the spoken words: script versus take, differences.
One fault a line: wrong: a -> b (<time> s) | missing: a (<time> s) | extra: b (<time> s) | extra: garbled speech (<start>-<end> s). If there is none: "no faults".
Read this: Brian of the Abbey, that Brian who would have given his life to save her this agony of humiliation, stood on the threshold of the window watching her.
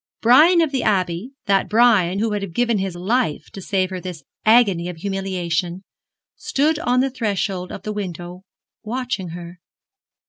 no faults